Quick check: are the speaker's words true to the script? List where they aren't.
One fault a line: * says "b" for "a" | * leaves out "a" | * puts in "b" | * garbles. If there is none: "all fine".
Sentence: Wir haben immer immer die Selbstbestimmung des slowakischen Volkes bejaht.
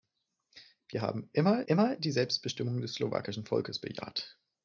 all fine